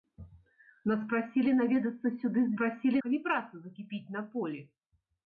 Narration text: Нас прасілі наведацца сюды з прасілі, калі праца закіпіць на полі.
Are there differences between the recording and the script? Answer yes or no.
no